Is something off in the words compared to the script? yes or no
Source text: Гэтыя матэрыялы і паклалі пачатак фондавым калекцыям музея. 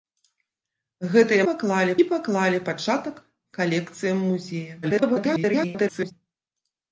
yes